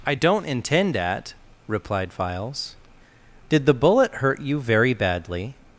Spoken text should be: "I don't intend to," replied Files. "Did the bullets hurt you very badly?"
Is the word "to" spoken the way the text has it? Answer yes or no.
no